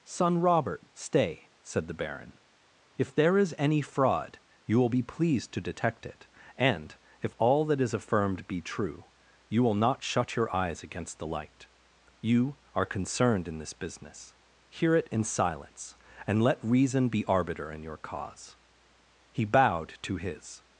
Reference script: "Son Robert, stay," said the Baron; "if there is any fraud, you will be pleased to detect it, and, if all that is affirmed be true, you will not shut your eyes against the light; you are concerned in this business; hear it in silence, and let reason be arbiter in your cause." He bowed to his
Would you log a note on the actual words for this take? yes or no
no